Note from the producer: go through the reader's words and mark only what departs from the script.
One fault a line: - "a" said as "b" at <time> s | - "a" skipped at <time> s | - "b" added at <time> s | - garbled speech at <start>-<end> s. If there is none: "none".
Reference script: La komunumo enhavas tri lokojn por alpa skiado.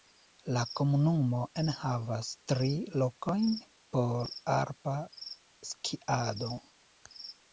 none